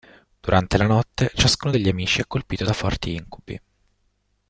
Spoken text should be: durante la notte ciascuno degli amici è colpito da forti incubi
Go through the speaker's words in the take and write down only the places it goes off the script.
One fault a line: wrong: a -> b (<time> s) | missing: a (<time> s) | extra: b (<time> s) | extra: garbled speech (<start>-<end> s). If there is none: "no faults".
no faults